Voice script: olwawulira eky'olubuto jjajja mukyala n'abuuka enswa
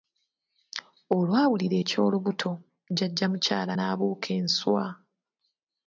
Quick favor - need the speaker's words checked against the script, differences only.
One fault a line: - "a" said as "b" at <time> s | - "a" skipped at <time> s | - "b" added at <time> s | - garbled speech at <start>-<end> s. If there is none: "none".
none